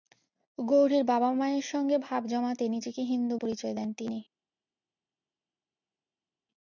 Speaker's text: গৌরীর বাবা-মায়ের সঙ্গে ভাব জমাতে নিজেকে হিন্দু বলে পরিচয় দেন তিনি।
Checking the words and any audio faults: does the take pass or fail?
fail